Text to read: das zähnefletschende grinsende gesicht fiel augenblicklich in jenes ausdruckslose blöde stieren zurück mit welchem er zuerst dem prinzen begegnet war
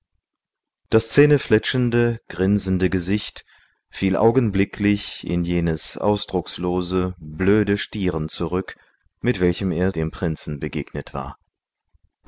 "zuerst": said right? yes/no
no